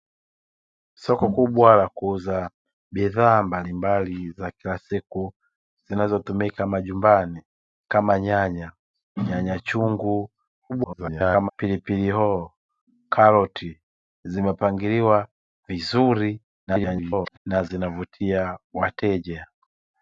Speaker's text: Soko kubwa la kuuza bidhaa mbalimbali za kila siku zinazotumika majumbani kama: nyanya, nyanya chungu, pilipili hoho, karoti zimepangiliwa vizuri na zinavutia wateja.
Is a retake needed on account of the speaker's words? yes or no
yes